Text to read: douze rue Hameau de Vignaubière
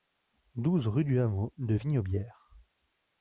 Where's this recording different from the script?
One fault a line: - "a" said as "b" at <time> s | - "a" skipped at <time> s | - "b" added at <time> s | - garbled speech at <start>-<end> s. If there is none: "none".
- "du" added at 1.1 s